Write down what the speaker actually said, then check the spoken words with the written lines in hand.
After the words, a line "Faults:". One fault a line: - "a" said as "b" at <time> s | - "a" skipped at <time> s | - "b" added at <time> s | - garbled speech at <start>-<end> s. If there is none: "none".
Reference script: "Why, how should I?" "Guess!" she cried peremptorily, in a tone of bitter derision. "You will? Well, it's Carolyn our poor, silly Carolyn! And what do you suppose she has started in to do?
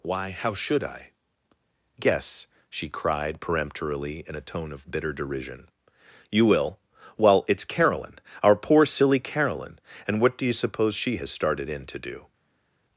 "Why, how should I?" "Guess!" she cried peremptorily, in a tone of bitter derision. "You will? Well, it's Carolyn our poor, silly Carolyn! And what do you suppose she has started in to do?
Faults:
none